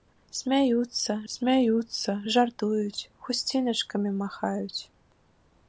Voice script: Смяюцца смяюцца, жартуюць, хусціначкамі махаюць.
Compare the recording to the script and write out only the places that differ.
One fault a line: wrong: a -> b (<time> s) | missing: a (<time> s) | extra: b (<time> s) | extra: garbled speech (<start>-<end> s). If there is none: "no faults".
no faults